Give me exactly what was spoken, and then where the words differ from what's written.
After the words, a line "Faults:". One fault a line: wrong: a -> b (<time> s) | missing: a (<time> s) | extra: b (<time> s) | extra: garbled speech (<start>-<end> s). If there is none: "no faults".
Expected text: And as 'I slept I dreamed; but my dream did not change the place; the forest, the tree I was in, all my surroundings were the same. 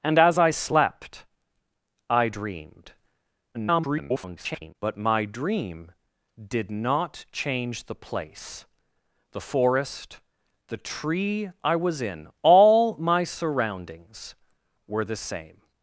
And as 'I slept I dreamed; [garbled] but my dream did not change the place; the forest, the tree I was in, all my surroundings were the same.
Faults:
extra: garbled speech (3.5-4.8 s)